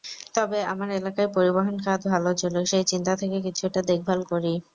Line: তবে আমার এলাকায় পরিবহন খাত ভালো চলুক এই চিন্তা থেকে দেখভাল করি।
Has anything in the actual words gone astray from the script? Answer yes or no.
yes